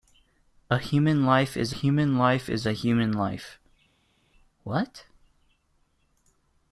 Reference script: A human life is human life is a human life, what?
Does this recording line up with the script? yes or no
yes